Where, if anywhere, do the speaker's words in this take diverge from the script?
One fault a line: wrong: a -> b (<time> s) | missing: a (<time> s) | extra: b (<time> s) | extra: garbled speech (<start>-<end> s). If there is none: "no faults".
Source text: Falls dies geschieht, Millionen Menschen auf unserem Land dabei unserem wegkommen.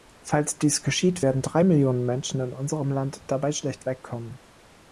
extra: werden drei (1.2 s)
wrong: auf -> in (2.4 s)
wrong: unserem -> schlecht (3.5 s)